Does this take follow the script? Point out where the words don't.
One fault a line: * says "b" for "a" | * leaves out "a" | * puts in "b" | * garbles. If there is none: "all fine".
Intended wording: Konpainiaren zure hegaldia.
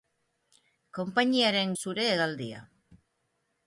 all fine